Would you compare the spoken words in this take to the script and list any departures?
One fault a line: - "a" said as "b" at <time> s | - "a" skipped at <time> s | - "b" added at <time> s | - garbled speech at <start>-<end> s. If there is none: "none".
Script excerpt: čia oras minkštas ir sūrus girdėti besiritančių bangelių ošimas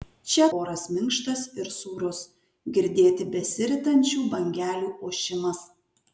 none